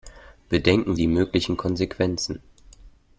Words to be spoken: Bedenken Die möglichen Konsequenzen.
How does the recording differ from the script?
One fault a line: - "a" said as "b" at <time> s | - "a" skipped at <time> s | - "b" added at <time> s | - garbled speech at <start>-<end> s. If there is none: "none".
none